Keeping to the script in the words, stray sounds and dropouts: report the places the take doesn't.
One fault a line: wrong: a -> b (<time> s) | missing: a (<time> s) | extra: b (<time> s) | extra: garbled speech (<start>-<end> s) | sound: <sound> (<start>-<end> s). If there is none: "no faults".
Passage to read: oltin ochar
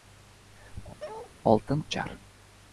sound: bark (1.0-1.3 s)